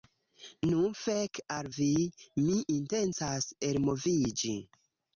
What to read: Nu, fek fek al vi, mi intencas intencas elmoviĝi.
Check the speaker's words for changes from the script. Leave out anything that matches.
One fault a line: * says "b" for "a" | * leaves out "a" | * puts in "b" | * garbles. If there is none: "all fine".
* leaves out "fek"
* leaves out "intencas"